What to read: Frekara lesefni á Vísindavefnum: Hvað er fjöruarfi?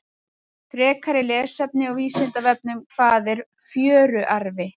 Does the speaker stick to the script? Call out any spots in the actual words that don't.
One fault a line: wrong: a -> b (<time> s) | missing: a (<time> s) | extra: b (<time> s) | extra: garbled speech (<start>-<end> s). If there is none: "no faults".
no faults